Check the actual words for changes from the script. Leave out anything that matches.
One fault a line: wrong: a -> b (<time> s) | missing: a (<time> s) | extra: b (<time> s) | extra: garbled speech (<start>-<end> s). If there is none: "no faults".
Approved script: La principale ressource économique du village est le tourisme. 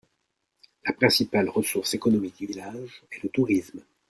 no faults